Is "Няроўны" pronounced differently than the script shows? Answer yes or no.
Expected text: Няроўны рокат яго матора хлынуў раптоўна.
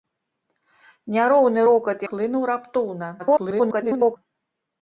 no